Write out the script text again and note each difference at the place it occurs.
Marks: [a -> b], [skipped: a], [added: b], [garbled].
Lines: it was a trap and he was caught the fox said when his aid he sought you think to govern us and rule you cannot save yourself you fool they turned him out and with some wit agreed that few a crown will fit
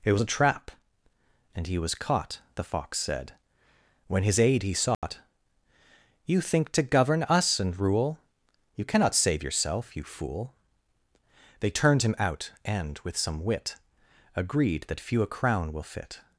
it was a trap and he was caught the fox said when his aid he sought you think to govern us and rule you cannot save yourself you fool they turned him out and with some wit agreed that few a crown will fit